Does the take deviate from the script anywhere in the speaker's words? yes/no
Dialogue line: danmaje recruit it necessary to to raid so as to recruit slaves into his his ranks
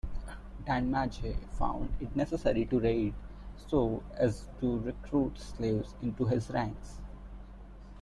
yes